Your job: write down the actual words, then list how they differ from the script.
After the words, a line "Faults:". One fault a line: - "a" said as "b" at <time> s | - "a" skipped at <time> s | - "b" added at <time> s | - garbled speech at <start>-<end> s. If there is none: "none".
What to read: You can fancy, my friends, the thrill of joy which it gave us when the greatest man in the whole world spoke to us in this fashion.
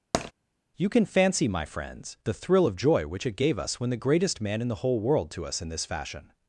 You can fancy, my friends, the thrill of joy which it gave us when the greatest man in the whole world to us in this fashion.
Faults:
- "spoke" skipped at 5.3 s